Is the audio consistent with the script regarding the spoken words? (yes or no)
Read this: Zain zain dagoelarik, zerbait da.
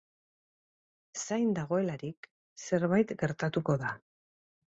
no